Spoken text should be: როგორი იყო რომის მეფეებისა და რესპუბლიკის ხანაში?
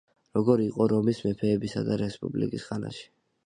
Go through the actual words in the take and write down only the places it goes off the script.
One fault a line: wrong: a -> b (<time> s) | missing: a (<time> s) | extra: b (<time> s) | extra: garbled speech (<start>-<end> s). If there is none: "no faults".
no faults